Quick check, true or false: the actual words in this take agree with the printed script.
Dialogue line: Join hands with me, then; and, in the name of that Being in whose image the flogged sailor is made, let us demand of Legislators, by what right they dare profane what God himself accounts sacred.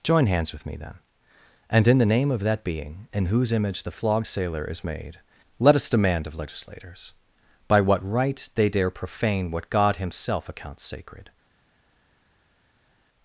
true